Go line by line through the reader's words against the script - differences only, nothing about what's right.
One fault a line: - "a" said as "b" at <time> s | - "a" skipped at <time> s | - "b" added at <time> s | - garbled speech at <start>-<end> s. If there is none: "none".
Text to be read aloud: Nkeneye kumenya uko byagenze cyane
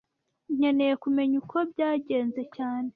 none